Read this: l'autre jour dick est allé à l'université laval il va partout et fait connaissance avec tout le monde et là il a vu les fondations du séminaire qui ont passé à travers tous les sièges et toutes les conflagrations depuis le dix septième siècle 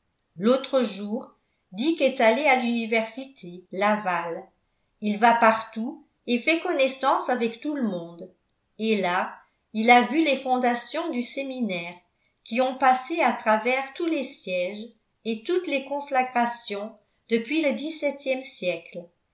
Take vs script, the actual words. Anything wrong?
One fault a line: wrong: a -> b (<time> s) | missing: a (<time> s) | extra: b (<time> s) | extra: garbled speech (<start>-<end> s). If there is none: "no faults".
no faults